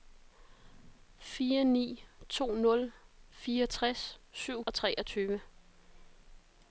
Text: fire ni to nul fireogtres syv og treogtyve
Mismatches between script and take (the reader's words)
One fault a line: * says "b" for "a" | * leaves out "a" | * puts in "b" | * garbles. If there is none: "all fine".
all fine